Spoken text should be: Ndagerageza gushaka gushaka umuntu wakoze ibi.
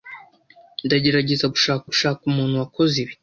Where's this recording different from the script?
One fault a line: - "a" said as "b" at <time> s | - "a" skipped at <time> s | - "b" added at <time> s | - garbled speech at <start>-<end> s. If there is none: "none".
none